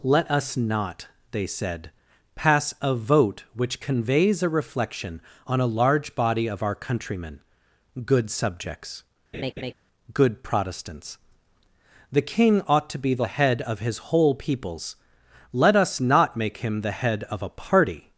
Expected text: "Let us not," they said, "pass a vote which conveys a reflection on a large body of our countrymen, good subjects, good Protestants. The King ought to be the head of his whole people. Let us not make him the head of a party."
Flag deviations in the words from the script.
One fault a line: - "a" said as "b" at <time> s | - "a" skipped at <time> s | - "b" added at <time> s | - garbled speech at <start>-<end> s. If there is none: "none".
- "people" said as "peoples" at 14.3 s